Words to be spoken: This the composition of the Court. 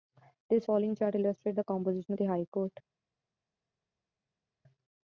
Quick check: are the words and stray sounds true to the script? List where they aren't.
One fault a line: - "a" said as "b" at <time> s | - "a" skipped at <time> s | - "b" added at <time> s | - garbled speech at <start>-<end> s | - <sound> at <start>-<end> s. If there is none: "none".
- "following chart illustrates" added at 0.6 s
- "High" added at 2.2 s